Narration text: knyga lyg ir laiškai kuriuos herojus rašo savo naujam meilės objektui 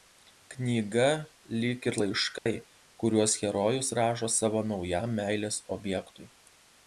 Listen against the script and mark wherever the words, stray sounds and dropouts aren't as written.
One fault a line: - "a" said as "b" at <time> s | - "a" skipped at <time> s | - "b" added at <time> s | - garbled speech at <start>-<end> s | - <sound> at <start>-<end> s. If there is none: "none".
- dropout at 2.4-2.5 s